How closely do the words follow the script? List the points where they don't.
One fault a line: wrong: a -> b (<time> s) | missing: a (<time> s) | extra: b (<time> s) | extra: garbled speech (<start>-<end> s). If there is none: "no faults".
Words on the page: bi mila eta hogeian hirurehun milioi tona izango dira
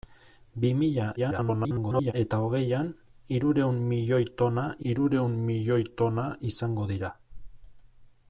extra: garbled speech (1.2-2.1 s)
extra: hirurehun milioi tona (4.9 s)